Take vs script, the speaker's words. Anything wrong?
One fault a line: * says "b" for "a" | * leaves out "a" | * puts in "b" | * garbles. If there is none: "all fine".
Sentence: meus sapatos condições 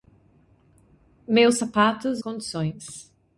all fine